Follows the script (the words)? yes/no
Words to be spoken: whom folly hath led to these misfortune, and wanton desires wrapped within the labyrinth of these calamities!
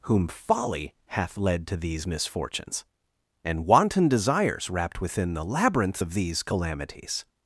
no